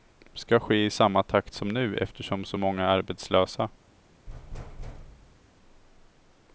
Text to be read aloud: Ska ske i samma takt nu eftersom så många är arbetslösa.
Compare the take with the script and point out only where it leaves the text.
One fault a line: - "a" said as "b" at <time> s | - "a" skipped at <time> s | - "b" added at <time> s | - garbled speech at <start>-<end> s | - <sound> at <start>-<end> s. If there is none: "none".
- "som" added at 1.5 s
- thud at 4.3-5.5 s